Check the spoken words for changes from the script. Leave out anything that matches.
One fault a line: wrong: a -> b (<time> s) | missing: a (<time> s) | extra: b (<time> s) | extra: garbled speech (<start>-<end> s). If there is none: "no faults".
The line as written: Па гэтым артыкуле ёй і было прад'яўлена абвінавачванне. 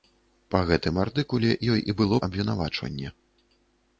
missing: прад'яўлена (2.2 s)